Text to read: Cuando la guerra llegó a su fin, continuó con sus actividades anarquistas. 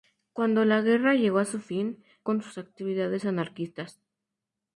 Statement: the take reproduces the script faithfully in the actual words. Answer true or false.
false